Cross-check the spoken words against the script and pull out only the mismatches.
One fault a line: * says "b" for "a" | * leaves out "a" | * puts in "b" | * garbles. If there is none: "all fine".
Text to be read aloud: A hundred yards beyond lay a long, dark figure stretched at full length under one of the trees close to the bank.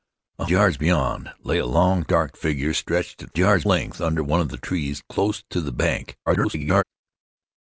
* leaves out "hundred"
* says "yards" for "full"
* garbles